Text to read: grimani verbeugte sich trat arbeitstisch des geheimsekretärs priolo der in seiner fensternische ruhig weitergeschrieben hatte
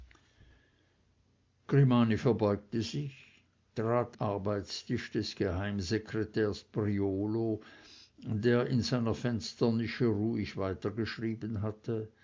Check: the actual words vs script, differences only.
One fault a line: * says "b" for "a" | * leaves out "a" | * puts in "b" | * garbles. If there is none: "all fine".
all fine